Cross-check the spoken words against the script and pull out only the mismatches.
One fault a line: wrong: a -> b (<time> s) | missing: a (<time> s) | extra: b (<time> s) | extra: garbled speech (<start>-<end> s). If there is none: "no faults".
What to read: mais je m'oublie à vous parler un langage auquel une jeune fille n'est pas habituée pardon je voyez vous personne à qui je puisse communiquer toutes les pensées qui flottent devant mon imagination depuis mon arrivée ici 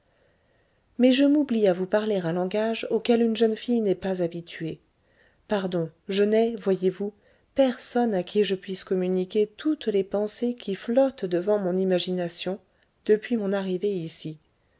extra: n'ai (6.2 s)